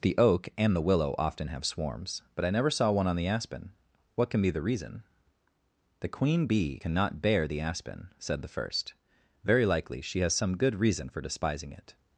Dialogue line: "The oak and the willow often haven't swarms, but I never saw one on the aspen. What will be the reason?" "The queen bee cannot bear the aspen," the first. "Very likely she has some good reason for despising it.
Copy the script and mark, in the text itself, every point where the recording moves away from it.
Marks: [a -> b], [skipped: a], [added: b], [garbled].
"The oak and the willow often [haven't -> have] swarms, but I never saw one on the aspen. What [will -> can] be the reason?" "The queen bee cannot bear the aspen," [added: said] the first. "Very likely she has some good reason for despising it.